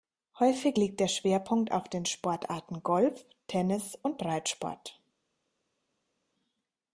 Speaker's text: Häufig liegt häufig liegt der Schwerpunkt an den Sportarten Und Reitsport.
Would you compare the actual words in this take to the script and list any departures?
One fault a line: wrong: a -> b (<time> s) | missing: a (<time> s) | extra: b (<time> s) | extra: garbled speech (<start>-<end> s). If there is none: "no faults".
missing: häufig liegt (1.0 s)
wrong: an -> auf (1.7 s)
extra: Golf Tennis (2.8 s)